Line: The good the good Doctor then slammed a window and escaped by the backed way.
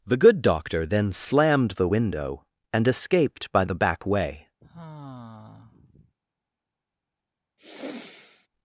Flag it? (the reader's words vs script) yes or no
yes